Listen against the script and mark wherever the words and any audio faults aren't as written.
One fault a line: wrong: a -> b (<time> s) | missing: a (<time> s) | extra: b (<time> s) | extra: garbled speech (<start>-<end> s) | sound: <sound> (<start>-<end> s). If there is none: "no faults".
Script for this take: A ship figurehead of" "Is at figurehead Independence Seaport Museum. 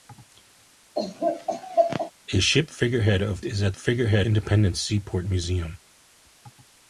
sound: laugh (0.9-2.1 s)